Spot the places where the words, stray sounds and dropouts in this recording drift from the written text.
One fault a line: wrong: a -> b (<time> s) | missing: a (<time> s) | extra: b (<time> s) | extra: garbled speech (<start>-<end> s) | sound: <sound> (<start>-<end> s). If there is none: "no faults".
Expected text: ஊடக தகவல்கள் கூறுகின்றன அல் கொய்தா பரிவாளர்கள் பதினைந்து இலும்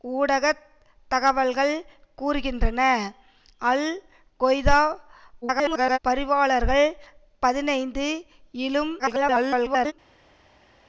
extra: garbled speech (5.4-6.0 s)
extra: garbled speech (9.0-9.9 s)